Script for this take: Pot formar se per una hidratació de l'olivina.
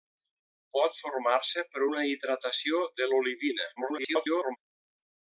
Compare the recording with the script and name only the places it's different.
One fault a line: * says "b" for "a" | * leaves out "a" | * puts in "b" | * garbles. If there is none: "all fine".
* garbles